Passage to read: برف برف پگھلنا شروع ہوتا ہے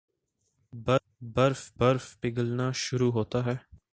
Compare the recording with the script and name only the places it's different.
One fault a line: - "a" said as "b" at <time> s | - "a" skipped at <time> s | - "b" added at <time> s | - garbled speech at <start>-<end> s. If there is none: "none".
none